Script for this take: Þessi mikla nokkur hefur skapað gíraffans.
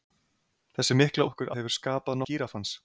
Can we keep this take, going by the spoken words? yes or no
yes